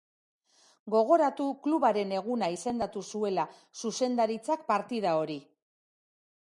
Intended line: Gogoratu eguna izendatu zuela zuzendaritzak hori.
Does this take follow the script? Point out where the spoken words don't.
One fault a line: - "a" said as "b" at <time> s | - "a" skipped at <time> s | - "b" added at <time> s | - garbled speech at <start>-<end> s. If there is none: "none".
- "klubaren" added at 1.7 s
- "partida" added at 4.7 s